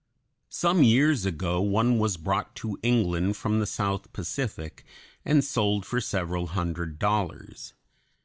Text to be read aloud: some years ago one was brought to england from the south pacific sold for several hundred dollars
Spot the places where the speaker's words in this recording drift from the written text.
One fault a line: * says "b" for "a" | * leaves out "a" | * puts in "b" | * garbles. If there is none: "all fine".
* puts in "and"